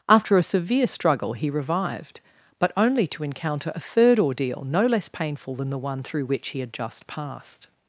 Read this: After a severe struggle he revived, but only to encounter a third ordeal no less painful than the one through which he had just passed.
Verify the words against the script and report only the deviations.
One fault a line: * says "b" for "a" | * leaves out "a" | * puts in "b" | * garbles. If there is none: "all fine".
all fine